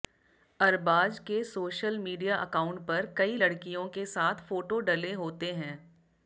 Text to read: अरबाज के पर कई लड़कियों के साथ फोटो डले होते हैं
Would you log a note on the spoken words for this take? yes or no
yes